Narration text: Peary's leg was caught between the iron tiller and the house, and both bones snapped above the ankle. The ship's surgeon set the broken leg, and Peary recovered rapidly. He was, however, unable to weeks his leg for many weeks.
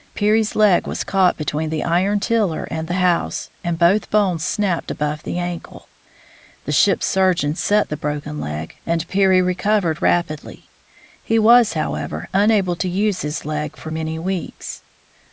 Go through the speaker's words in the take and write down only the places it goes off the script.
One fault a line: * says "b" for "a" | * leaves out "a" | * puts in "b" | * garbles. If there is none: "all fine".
* says "use" for "weeks"